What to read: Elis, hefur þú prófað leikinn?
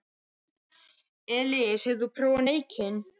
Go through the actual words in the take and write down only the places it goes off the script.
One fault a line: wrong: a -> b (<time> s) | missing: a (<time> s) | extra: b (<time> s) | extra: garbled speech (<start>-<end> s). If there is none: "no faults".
no faults